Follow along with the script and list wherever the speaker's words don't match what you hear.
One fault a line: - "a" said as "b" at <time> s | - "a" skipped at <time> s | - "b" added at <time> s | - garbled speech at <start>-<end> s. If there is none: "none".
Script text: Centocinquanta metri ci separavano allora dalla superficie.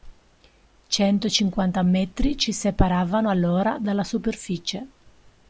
none